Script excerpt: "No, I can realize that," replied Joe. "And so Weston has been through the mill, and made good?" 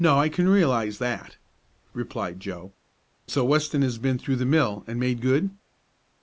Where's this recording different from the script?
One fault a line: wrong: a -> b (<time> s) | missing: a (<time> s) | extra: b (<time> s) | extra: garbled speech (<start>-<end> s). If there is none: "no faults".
missing: And (2.7 s)